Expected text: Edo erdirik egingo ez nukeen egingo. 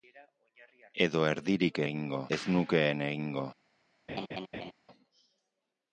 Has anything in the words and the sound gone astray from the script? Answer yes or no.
yes